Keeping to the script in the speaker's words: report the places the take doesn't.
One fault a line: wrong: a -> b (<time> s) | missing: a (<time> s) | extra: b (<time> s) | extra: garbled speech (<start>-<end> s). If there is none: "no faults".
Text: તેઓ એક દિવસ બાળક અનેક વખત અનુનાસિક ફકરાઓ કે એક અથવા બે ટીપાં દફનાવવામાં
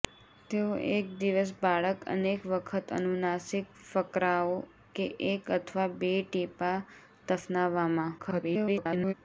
extra: garbled speech (8.2-9.1 s)